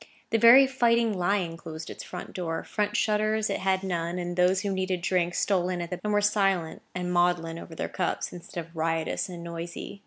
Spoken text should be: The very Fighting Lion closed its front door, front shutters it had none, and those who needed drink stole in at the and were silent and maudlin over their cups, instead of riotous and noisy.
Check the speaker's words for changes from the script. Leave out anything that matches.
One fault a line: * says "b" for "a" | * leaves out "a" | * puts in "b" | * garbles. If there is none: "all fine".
all fine